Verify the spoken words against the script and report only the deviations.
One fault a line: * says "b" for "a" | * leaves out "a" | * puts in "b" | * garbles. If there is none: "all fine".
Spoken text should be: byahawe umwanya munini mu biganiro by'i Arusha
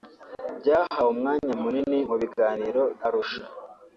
* leaves out "by'i"